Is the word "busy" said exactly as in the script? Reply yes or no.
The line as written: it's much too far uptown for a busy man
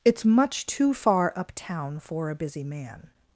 yes